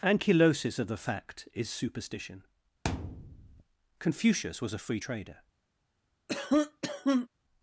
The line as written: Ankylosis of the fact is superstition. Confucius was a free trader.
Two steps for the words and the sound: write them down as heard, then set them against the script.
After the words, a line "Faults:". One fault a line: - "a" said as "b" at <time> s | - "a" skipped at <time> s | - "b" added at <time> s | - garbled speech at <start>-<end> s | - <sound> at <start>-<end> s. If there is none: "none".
Ankylosis of the fact is superstition. Confucius was a free trader.
Faults:
- thud at 2.8-3.6 s
- cough at 6.3-7.3 s